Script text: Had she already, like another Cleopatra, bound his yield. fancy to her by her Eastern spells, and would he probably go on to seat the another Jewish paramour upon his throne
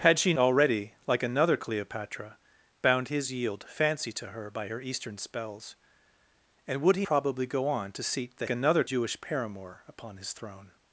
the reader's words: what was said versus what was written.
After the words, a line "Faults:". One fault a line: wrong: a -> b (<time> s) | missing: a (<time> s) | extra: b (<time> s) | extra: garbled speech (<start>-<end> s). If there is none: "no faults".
Had she already, like another Cleopatra, bound his yield. fancy to her by her Eastern spells, and would he probably go on to seat the another Jewish paramour upon his throne
Faults:
no faults